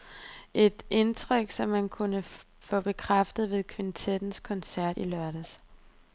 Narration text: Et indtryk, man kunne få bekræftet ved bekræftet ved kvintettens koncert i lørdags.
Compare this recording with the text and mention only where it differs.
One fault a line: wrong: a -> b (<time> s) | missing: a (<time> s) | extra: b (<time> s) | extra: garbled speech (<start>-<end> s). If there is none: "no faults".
extra: som (1.5 s)
missing: bekræftet ved (3.6 s)